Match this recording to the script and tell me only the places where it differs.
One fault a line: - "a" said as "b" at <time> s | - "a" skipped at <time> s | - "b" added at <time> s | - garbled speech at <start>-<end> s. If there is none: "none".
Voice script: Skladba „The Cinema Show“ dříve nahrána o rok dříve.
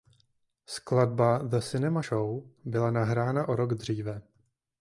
- "dříve" said as "byla" at 2.6 s